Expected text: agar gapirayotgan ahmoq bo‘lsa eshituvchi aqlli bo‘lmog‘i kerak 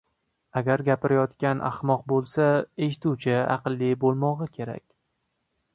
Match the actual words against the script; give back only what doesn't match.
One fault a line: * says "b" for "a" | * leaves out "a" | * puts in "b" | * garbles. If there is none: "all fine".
all fine